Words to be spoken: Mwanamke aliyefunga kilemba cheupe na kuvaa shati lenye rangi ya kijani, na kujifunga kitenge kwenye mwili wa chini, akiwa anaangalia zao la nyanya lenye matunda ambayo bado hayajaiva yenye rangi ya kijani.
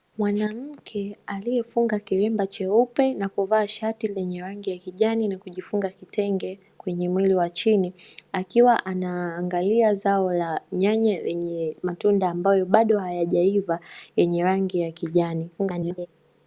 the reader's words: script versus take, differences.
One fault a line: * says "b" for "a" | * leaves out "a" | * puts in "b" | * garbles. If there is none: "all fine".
* garbles